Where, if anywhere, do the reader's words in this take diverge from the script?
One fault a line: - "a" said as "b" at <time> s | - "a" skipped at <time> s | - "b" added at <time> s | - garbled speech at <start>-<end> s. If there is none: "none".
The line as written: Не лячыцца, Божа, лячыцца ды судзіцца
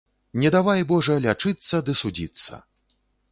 - "лячыцца" said as "давай" at 0.5 s